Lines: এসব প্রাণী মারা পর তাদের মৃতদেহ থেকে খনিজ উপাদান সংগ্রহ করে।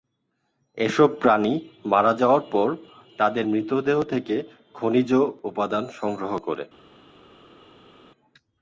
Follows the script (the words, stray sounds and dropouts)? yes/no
no